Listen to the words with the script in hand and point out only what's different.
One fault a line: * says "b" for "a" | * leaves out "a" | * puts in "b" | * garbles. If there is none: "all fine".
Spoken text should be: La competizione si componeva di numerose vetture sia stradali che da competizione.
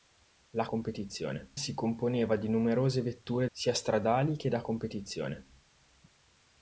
all fine